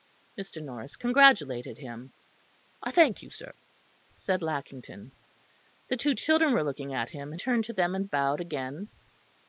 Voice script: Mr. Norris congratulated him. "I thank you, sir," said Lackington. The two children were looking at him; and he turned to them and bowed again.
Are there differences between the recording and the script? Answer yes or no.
yes